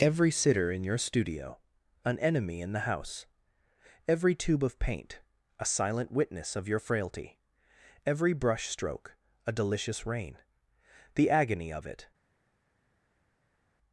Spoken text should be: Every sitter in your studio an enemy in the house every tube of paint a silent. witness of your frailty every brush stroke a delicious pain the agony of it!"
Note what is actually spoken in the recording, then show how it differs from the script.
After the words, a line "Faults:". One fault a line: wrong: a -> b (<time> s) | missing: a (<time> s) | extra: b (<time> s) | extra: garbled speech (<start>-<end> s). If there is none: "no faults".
Every sitter in your studio an enemy in the house every tube of paint a silent. witness of your frailty every brush stroke a delicious rain the agony of it!"
Faults:
wrong: pain -> rain (10.0 s)